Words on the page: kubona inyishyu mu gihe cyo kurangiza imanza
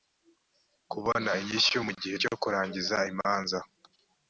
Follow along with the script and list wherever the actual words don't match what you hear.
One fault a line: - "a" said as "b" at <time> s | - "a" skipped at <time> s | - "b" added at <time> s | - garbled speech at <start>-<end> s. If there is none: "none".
none